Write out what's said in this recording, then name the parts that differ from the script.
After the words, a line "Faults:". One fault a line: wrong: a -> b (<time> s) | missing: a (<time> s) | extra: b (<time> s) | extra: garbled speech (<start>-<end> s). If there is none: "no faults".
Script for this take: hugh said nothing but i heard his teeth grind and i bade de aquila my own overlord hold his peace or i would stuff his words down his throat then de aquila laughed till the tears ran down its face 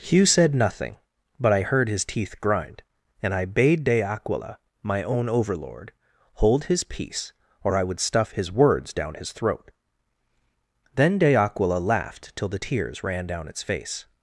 hugh said nothing but i heard his teeth grind and i bade de aquila my own overlord hold his peace or i would stuff his words down his throat then de aquila laughed till the tears ran down its face
Faults:
no faults